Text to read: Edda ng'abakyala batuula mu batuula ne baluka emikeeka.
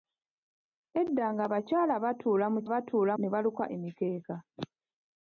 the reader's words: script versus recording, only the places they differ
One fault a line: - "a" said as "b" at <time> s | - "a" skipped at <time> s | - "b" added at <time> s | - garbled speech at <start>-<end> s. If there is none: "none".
none